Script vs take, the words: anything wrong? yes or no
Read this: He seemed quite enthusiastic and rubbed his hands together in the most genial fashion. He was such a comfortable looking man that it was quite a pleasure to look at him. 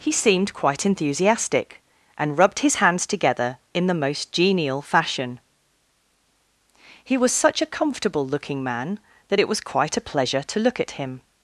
no